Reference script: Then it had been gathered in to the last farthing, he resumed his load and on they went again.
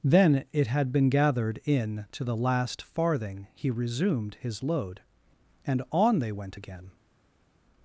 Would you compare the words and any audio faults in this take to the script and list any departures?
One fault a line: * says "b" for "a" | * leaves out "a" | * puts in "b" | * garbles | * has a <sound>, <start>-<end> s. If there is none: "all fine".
all fine